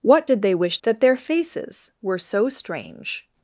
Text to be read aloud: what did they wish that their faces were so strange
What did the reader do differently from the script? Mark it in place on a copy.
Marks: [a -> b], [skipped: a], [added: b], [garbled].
what did they wish that their faces were so strange